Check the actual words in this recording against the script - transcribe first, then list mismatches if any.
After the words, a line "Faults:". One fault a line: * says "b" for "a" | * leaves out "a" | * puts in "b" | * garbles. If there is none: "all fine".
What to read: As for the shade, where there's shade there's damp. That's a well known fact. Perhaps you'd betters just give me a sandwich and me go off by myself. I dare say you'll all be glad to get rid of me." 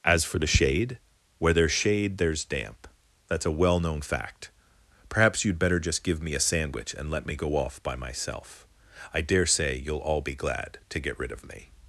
As for the shade, where there's shade there's damp. That's a well known fact. Perhaps you'd better just give me a sandwich and let me go off by myself. I dare say you'll all be glad to get rid of me."
Faults:
* says "better" for "betters"
* puts in "let"